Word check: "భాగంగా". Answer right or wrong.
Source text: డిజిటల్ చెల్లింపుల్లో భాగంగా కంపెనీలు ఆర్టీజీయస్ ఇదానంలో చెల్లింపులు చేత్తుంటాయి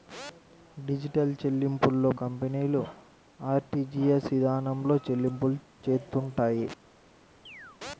wrong